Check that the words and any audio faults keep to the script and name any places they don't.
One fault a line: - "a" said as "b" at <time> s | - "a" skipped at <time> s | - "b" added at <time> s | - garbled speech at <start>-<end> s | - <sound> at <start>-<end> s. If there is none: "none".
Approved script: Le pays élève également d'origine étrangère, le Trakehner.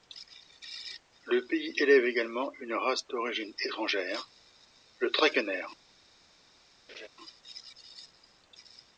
- "une race" added at 2.6 s
- laugh at 6.9-7.1 s